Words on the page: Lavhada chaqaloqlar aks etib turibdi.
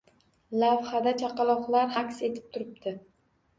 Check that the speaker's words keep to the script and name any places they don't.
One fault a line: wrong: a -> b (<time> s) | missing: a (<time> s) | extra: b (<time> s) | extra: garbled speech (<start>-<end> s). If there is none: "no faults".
no faults